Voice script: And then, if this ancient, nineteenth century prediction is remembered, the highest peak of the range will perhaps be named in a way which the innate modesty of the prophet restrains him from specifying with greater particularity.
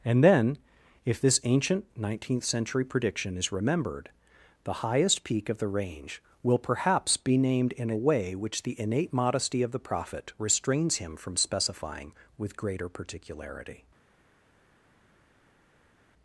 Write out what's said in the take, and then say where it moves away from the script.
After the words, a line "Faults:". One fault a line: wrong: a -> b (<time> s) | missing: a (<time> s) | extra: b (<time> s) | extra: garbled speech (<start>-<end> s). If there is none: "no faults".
And then, if this ancient, nineteenth century prediction is remembered, the highest peak of the range will perhaps be named in a way which the innate modesty of the prophet restrains him from specifying with greater particularity.
Faults:
no faults